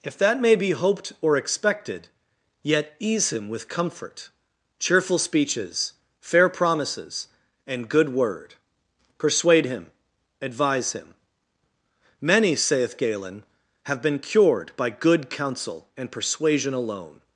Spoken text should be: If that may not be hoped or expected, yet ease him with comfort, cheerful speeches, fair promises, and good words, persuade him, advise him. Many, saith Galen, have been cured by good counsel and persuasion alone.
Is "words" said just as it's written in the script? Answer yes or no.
no